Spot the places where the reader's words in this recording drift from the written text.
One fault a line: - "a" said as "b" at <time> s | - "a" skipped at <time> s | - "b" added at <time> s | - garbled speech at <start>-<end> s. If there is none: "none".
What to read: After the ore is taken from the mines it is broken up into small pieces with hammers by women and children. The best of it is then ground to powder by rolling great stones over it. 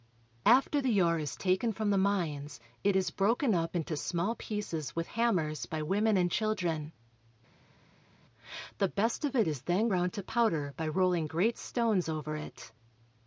none